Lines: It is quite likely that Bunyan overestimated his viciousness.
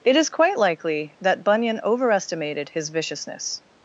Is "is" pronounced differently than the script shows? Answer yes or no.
no